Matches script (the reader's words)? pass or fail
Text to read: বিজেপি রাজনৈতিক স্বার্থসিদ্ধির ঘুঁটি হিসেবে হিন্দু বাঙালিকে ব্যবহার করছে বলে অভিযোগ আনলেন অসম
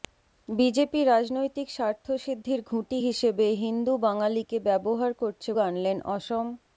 fail